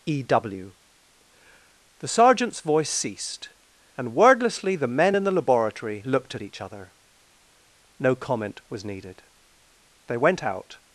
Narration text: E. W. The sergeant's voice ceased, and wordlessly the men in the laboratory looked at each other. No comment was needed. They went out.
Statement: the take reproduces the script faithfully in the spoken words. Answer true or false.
true